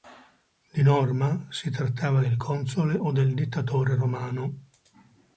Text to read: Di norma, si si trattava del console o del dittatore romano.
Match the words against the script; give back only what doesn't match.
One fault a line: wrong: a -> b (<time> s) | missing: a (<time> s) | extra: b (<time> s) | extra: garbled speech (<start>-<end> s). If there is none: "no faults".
missing: si (1.7 s)